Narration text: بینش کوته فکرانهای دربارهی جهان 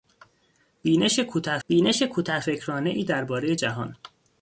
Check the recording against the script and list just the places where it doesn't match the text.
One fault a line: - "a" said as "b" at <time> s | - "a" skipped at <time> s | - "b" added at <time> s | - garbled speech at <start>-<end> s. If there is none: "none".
- "بینش کوته" added at 1.7 s